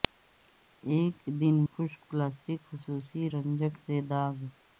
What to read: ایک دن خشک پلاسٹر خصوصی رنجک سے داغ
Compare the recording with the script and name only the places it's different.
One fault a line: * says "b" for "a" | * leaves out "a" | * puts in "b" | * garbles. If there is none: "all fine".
all fine